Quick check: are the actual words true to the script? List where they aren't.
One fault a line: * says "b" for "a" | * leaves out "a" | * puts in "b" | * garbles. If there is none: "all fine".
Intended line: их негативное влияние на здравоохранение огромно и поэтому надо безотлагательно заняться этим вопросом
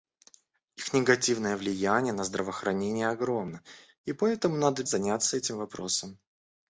* leaves out "безотлагательно"